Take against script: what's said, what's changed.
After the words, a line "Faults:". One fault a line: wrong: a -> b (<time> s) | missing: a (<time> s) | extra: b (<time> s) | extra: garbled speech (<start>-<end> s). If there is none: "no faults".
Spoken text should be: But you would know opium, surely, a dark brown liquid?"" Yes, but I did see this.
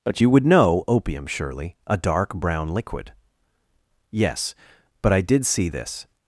But you would know opium, surely, a dark brown liquid?"" Yes, but I did see this.
Faults:
no faults